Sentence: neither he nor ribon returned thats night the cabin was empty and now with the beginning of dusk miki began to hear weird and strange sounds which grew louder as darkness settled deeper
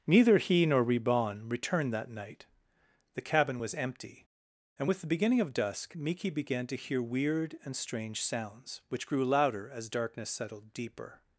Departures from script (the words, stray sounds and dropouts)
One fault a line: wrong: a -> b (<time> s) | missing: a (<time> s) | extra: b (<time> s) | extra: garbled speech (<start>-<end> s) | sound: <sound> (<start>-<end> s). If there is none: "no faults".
wrong: thats -> that (1.9 s)
missing: now (4.9 s)